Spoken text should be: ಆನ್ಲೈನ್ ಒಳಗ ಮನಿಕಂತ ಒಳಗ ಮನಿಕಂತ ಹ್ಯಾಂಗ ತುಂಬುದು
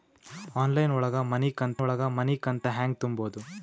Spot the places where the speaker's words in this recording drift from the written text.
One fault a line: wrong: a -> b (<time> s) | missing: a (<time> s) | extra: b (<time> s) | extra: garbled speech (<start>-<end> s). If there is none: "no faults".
no faults